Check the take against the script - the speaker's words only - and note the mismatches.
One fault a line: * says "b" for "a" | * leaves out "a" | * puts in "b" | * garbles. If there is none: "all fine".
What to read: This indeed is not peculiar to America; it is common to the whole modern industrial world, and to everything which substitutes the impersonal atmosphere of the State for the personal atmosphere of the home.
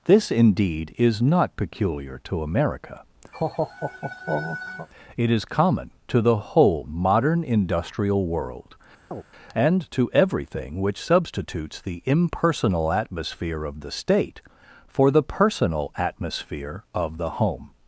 all fine